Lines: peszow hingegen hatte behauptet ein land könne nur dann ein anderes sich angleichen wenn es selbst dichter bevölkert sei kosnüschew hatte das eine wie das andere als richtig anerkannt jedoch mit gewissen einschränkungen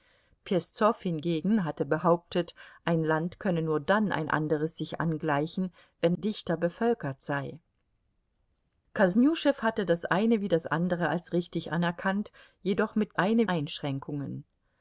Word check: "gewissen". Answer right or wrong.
wrong